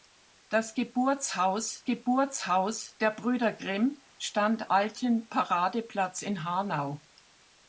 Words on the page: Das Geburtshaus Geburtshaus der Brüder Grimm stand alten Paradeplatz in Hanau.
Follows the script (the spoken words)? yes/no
yes